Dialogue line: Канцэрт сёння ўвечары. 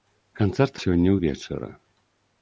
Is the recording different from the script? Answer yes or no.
no